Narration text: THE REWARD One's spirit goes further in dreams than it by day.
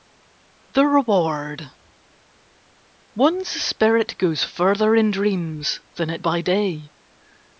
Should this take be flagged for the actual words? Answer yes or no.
no